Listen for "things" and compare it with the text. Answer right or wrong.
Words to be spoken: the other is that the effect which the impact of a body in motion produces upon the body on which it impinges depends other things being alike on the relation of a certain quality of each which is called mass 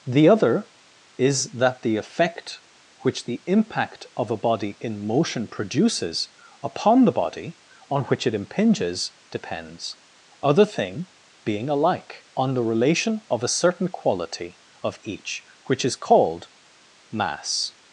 wrong